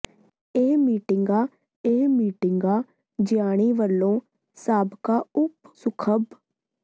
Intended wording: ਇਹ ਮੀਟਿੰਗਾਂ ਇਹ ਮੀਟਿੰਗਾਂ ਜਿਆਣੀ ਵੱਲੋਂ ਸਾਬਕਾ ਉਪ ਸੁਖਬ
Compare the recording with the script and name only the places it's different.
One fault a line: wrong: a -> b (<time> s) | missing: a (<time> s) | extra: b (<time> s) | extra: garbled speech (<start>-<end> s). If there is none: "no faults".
no faults